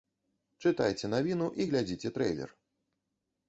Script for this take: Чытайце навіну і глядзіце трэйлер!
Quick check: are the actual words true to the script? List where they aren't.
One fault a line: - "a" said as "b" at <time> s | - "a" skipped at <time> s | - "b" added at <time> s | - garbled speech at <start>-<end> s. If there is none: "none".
none